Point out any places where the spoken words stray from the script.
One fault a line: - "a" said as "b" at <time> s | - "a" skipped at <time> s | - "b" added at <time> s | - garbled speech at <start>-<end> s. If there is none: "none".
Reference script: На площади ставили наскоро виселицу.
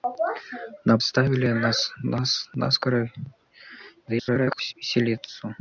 - "площади" skipped at 1.0 s
- garbled speech at 4.0-4.7 s